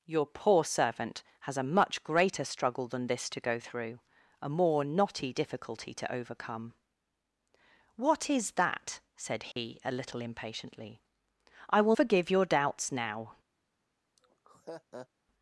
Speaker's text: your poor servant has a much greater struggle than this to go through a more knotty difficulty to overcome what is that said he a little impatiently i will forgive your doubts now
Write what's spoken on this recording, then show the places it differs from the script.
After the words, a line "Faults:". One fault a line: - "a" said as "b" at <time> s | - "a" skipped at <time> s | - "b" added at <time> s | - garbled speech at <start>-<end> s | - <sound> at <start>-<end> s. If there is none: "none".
your poor servant has a much greater struggle than this to go through a more knotty difficulty to overcome what is that said he a little impatiently i will forgive your doubts now
Faults:
- dropout at 9.5-9.6 s
- laugh at 14.2-15.1 s